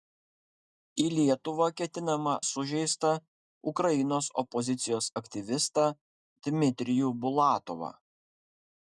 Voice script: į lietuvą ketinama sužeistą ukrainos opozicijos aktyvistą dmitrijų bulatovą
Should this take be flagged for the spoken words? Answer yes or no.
no